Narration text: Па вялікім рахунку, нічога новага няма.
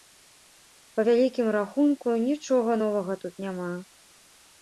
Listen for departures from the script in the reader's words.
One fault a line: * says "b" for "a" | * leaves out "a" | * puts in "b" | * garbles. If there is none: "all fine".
* puts in "тут"